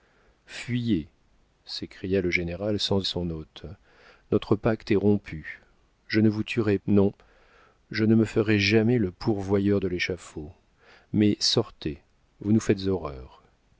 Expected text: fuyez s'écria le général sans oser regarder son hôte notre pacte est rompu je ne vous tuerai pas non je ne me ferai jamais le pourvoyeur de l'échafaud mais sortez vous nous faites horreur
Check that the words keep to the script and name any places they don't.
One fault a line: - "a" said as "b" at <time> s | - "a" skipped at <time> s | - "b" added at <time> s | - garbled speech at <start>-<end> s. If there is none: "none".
- "oser regarder" skipped at 3.1 s
- "pas" skipped at 6.8 s